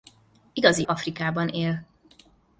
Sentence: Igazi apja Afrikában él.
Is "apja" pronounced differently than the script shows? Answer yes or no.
yes